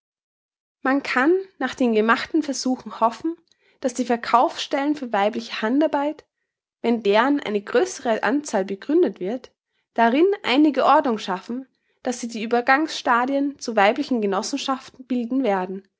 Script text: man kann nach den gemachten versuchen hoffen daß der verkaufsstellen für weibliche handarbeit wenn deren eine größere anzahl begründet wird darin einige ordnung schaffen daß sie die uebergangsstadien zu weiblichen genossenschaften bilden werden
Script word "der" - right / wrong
wrong